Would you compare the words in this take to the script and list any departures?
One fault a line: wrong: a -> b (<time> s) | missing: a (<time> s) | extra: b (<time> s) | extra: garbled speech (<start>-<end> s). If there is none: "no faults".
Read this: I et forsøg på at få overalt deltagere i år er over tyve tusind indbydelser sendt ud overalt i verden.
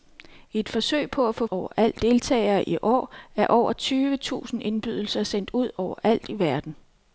no faults